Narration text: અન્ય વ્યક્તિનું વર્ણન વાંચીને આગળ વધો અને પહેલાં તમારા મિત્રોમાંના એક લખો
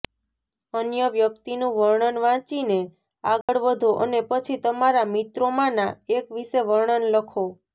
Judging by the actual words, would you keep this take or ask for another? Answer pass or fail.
fail